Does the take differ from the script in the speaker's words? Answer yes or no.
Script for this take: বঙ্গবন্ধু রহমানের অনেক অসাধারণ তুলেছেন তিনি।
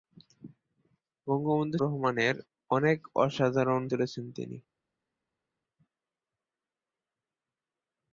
no